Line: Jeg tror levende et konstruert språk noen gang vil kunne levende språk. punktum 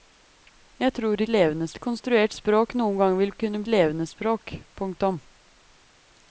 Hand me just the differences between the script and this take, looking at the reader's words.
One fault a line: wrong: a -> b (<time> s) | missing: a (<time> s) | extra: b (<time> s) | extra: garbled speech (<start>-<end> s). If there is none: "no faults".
no faults